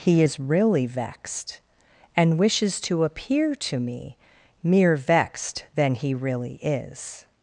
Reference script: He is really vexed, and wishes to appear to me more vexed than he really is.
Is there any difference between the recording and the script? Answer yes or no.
yes